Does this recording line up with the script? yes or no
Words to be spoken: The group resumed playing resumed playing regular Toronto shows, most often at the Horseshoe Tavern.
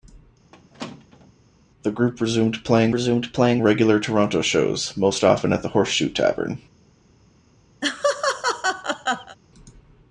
yes